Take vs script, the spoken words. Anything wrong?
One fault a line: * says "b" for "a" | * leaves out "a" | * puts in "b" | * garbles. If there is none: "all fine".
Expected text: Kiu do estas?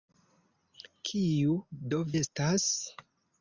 all fine